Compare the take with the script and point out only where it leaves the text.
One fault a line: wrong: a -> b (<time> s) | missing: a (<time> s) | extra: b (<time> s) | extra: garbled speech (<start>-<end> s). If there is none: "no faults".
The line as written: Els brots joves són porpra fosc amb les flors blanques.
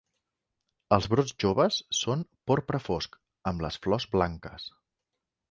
no faults